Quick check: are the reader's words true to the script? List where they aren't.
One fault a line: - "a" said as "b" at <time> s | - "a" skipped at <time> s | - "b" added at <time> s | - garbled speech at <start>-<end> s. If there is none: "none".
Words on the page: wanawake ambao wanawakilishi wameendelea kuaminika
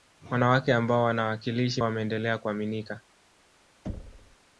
none